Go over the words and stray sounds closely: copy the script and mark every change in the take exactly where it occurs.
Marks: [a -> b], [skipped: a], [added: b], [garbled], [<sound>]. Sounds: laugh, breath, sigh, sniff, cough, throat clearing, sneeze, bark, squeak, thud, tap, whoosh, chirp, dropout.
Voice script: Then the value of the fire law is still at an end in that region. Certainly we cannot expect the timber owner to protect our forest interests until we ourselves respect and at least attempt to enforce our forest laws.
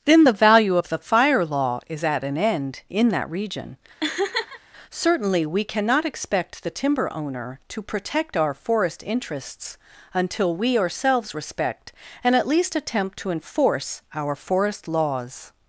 Then the value of the fire law is [skipped: still] at an end in that region. [laugh] Certainly we cannot expect the timber owner to protect our forest interests until we ourselves respect and at least attempt to enforce our forest laws.